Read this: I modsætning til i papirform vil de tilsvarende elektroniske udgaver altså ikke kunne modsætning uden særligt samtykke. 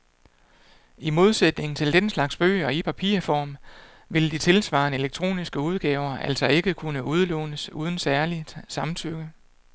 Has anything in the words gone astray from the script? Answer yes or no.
yes